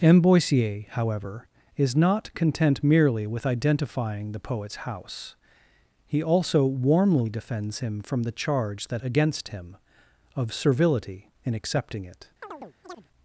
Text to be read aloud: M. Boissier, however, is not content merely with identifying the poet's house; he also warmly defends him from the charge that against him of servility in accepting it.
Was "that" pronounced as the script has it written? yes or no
yes